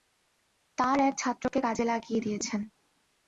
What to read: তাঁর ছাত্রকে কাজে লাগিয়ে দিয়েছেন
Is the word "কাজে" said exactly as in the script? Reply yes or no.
yes